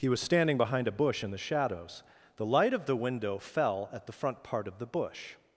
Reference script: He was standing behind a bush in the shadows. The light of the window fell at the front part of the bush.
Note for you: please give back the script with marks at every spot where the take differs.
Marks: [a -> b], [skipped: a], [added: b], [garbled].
He was standing behind a bush in the shadows. The light of the window fell at the front part of the bush.